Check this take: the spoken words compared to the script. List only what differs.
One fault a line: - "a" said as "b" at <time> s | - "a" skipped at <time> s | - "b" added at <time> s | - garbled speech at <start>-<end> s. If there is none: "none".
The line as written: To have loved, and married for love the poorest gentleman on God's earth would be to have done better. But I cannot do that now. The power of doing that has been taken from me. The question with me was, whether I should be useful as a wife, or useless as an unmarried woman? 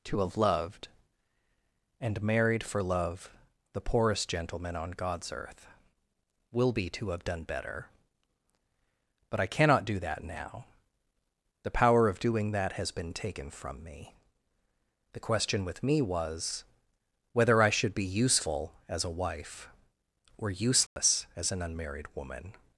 - "would" said as "will" at 6.5 s